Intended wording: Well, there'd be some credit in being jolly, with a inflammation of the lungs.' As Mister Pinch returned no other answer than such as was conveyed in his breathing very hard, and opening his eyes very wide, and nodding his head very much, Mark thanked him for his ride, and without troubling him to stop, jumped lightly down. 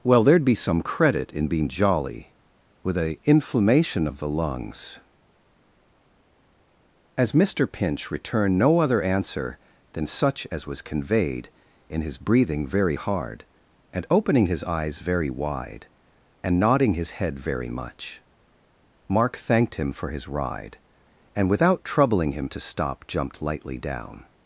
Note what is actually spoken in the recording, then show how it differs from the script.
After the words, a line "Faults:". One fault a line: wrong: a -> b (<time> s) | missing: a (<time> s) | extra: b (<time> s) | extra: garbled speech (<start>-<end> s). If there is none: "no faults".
Well, there'd be some credit in being jolly, with a inflammation of the lungs.' As Mister Pinch returned no other answer than such as was conveyed in his breathing very hard, and opening his eyes very wide, and nodding his head very much, Mark thanked him for his ride, and without troubling him to stop, jumped lightly down.
Faults:
no faults